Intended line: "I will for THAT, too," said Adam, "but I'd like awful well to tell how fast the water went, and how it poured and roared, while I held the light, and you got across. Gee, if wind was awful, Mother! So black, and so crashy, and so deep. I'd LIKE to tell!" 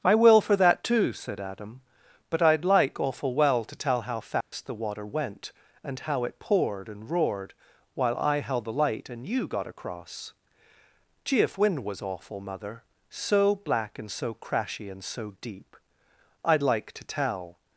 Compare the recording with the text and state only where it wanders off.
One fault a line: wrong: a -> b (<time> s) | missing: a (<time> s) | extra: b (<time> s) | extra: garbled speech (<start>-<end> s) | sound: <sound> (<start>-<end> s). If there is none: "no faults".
sound: dropout (4.4-4.5 s)